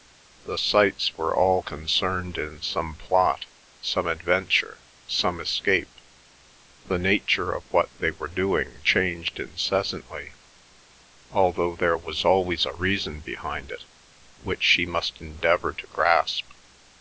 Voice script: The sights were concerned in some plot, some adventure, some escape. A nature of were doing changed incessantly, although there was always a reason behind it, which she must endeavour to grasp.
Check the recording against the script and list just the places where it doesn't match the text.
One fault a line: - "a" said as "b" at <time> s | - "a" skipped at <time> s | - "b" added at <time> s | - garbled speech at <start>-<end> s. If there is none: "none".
- "all" added at 1.4 s
- "A" said as "The" at 6.9 s
- "what they" added at 7.7 s